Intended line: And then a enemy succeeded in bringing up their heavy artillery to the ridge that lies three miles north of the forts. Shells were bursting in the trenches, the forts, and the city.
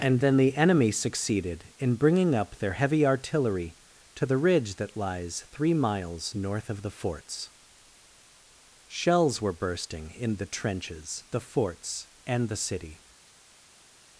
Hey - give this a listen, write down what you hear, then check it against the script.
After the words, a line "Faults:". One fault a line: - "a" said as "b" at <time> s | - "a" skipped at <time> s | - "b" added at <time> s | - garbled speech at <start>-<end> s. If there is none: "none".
And then the enemy succeeded in bringing up their heavy artillery to the ridge that lies three miles north of the forts. Shells were bursting in the trenches, the forts, and the city.
Faults:
- "a" said as "the" at 0.4 s